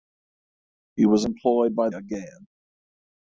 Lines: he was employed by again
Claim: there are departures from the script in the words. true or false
false